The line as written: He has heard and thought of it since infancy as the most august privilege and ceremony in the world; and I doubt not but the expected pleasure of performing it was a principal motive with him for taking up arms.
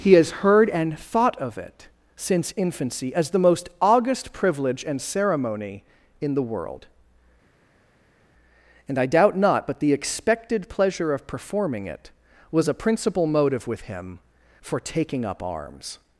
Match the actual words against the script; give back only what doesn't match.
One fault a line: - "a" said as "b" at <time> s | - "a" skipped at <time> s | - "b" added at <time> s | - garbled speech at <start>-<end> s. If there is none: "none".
none